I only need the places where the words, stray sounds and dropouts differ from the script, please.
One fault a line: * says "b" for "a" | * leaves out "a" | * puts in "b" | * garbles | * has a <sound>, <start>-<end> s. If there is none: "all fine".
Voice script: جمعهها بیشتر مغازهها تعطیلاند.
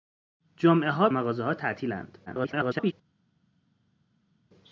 * leaves out "بیشتر"
* garbles